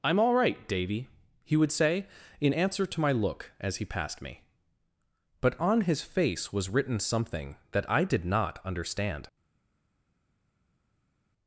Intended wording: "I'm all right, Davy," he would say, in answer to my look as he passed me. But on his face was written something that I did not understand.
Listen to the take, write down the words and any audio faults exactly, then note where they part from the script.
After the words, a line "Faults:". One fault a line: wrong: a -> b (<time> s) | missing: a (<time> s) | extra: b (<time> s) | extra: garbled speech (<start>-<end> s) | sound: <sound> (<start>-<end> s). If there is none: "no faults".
"I'm all right, Davy," he would say, in answer to my look as he passed me. But on his face was written something that I did not understand.
Faults:
no faults